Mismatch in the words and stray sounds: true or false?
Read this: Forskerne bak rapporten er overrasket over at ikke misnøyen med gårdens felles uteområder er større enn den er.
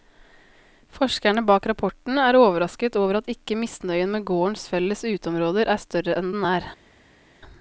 false